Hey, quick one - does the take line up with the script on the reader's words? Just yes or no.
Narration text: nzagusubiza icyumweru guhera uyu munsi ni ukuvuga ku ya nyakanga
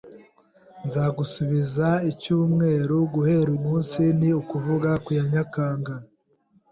no